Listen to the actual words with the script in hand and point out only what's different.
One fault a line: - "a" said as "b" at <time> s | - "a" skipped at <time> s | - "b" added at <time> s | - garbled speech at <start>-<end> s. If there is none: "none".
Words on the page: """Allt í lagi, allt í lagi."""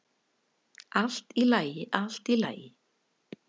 none